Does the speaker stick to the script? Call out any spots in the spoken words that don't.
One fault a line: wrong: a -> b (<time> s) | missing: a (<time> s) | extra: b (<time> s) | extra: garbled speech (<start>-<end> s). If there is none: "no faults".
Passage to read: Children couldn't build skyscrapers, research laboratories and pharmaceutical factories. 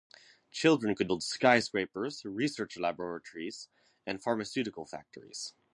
wrong: couldn't -> could (0.9 s)